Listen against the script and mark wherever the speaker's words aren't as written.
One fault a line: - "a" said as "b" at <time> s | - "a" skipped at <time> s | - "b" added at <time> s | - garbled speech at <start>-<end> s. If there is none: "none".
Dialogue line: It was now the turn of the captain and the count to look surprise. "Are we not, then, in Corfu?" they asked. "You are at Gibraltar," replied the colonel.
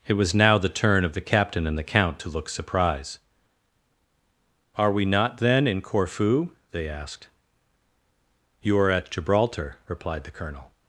none